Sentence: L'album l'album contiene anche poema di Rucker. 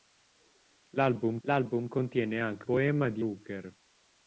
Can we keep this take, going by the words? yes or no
yes